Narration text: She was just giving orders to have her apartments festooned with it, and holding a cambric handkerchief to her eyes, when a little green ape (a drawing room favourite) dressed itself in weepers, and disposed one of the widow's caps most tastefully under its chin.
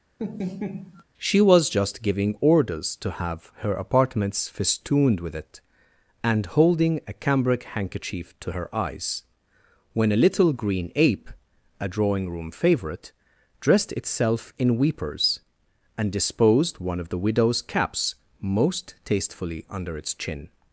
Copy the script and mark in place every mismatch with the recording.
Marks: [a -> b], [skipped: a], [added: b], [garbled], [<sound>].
[laugh] She was just giving orders to have her apartments festooned with it, and holding a cambric handkerchief to her eyes, when a little green ape (a drawing room favourite) dressed itself in weepers, and disposed one of the widow's caps most tastefully under its chin.